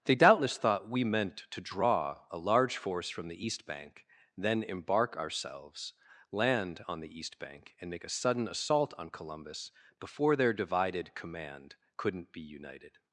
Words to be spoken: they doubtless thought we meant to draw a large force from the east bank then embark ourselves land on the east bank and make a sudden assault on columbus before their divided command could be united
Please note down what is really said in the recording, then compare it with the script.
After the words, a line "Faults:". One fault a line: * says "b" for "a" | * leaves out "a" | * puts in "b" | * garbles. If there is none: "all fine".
they doubtless thought we meant to draw a large force from the east bank then embark ourselves land on the east bank and make a sudden assault on columbus before their divided command couldn't be united
Faults:
* says "couldn't" for "could"